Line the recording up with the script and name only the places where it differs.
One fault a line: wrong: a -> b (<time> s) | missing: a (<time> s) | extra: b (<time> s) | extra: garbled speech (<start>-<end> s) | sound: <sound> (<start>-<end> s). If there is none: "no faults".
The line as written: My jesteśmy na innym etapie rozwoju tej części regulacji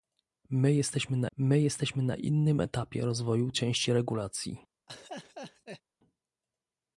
extra: my jesteśmy na (1.4 s)
missing: tej (3.5 s)
sound: laugh (4.9-5.8 s)